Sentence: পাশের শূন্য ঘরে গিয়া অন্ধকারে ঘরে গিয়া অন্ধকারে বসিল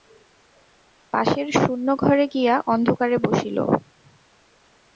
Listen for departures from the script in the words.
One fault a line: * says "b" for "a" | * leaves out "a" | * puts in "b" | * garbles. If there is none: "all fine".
* leaves out "ঘরে গিয়া অন্ধকারে"